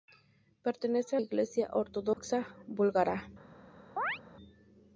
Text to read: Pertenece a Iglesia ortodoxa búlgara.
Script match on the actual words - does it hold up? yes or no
yes